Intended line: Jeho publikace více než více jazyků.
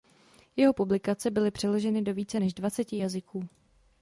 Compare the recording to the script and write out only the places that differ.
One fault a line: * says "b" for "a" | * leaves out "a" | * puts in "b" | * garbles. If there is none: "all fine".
* puts in "byly přeloženy do"
* says "dvaceti" for "více"